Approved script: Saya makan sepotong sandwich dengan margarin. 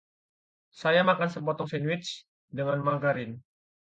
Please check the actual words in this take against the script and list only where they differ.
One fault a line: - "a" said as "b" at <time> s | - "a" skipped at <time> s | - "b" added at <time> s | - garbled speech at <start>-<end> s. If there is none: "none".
none